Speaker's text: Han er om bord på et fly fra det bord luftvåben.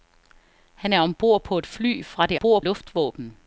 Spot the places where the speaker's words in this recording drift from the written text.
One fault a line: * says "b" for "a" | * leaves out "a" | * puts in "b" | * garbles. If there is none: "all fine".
all fine